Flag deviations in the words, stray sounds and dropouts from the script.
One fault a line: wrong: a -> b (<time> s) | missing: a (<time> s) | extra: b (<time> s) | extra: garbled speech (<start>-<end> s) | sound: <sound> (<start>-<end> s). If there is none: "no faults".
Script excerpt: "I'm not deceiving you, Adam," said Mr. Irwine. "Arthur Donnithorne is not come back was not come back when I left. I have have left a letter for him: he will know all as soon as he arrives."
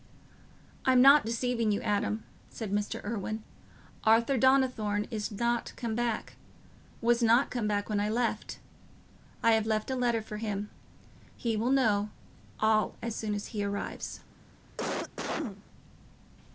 missing: have (9.7 s)
sound: cough (14.8-15.6 s)